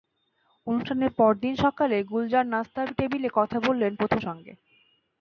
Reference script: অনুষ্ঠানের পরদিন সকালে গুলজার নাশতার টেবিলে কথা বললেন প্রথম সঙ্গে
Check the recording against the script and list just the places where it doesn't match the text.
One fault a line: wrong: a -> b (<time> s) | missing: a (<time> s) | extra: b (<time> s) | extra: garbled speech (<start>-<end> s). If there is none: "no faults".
no faults